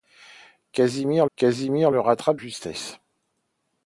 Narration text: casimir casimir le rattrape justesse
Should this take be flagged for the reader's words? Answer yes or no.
no